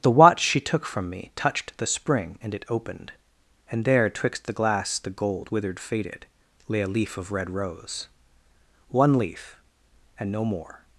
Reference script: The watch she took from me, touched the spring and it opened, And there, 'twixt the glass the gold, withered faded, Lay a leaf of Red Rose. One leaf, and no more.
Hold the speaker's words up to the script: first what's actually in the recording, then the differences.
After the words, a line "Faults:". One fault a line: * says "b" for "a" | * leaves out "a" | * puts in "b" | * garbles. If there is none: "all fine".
The watch she took from me, touched the spring and it opened, And there, 'twixt the glass the gold, withered faded, Lay a leaf of Red Rose. One leaf, and no more.
Faults:
all fine